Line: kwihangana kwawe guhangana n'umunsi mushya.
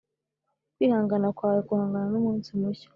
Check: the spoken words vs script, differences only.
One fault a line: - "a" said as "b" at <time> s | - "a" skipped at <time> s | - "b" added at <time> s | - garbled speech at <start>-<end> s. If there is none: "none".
none